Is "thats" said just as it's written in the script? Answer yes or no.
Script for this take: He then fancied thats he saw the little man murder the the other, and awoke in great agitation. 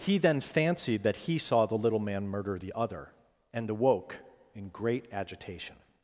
no